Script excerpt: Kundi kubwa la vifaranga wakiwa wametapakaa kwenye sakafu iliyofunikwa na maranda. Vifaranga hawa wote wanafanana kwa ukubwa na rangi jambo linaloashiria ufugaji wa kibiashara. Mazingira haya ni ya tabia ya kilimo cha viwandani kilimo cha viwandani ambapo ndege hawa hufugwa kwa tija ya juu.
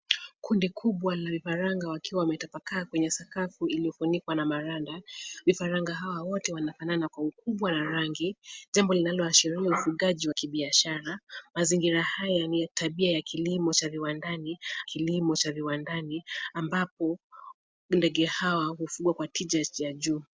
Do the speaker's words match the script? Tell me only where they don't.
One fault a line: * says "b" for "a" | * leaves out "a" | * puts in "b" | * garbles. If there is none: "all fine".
all fine